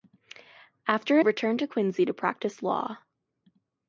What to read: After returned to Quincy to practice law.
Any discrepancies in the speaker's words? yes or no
no